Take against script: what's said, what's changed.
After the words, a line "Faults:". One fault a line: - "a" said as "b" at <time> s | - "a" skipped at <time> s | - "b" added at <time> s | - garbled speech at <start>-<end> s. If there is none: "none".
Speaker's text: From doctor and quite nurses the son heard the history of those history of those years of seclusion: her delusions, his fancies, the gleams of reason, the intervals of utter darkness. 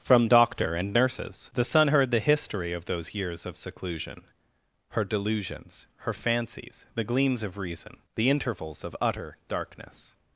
From doctor and nurses the son heard the history of those years of seclusion: her delusions, her fancies, the gleams of reason, the intervals of utter darkness.
Faults:
- "quite" skipped at 0.9 s
- "history of those" skipped at 3.1 s
- "his" said as "her" at 6.0 s